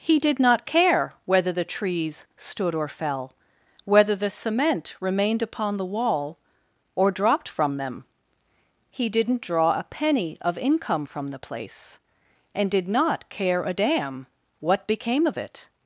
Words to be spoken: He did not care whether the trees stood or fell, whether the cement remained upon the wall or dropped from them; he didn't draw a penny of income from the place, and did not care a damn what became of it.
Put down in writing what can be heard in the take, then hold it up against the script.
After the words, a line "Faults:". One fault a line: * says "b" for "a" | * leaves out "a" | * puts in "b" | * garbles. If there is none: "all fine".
He did not care whether the trees stood or fell, whether the cement remained upon the wall or dropped from them; he didn't draw a penny of income from the place, and did not care a damn what became of it.
Faults:
all fine